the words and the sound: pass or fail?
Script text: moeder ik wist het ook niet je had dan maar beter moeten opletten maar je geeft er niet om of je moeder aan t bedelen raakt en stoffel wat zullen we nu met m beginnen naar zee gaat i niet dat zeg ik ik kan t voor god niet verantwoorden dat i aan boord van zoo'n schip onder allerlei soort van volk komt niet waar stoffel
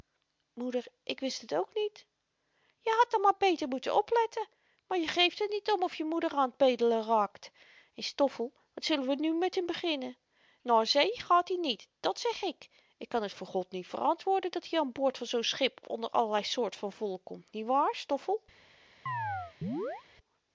fail